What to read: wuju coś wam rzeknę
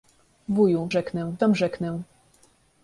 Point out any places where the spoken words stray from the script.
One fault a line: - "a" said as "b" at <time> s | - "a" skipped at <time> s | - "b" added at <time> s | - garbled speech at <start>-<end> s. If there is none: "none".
- "coś" said as "rzeknę" at 0.9 s